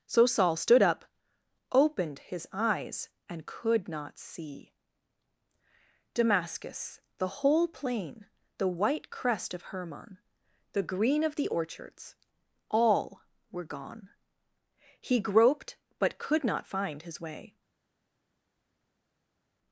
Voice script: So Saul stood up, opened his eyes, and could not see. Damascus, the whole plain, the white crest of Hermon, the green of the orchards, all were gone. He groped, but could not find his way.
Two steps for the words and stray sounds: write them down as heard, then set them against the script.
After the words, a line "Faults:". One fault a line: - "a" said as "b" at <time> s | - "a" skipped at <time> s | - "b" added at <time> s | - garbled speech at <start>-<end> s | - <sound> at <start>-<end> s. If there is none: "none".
So Saul stood up, opened his eyes, and could not see. Damascus, the whole plain, the white crest of Hermon, the green of the orchards, all were gone. He groped, but could not find his way.
Faults:
none